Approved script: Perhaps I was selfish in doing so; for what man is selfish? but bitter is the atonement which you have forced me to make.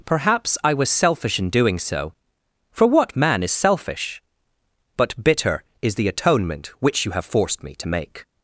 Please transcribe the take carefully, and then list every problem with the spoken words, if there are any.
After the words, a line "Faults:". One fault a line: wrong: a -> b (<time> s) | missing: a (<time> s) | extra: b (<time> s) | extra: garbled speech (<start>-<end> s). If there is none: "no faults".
Perhaps I was selfish in doing so; for what man is selfish? but bitter is the atonement which you have forced me to make.
Faults:
no faults